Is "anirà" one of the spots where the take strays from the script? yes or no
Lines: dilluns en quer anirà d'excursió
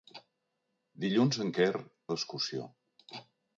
yes